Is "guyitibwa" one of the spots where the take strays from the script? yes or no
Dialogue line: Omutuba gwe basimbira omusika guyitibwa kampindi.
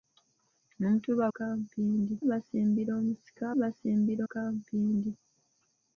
yes